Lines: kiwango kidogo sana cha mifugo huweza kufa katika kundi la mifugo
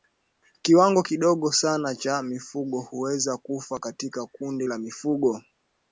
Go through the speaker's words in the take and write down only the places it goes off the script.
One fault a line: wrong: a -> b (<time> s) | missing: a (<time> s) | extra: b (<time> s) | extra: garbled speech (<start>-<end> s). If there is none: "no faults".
no faults